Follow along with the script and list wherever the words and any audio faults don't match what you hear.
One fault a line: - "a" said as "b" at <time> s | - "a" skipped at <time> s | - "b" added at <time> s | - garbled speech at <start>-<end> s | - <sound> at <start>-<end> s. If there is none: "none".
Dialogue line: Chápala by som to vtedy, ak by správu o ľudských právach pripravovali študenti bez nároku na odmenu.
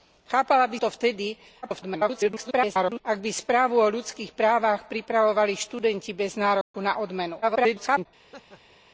- "som" skipped at 0.8 s
- garbled speech at 1.6-3.0 s
- dropout at 6.6-6.7 s
- garbled speech at 7.4-8.1 s
- laugh at 8.2-8.8 s